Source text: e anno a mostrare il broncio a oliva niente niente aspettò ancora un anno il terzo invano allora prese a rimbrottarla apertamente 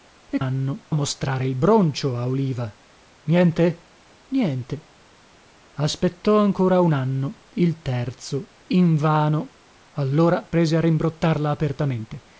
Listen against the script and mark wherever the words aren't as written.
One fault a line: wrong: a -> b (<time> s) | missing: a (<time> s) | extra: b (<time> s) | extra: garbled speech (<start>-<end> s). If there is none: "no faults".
no faults